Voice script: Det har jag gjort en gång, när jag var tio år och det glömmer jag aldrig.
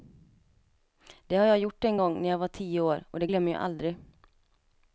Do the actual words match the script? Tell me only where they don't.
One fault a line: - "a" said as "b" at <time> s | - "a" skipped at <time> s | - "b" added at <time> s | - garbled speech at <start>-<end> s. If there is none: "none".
none